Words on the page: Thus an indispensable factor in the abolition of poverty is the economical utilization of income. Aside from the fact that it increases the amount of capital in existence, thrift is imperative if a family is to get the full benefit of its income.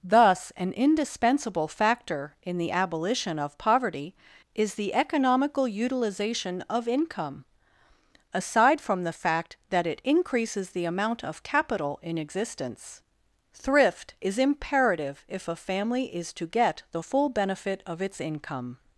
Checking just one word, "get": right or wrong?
right